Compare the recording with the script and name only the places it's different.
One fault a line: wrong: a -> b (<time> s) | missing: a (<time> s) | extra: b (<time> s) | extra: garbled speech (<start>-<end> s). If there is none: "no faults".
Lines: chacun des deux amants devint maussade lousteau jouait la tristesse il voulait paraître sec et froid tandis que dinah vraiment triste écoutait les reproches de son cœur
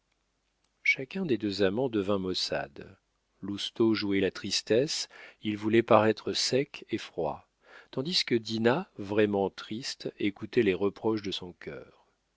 no faults